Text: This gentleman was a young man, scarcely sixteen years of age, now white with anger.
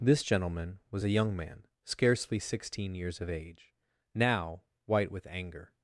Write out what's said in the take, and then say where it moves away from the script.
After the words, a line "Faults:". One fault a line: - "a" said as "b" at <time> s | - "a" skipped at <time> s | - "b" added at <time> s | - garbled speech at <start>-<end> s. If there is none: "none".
This gentleman was a young man, scarcely sixteen years of age, now white with anger.
Faults:
none